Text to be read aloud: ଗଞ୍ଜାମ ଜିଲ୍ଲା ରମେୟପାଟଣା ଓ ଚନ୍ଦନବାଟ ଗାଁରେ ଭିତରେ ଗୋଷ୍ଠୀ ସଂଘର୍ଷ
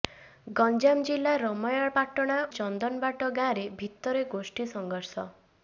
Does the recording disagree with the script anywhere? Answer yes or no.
yes